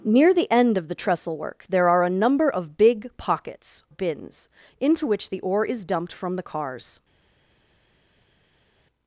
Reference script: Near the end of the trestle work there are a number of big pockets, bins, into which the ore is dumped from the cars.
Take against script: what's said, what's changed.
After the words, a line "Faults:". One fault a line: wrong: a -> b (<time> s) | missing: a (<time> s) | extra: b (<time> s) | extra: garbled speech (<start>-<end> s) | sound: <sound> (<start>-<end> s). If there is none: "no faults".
Near the end of the trestle work there are a number of big pockets, bins, into which the ore is dumped from the cars.
Faults:
no faults